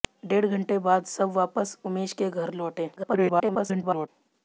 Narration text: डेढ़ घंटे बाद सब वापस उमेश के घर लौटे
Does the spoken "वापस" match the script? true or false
true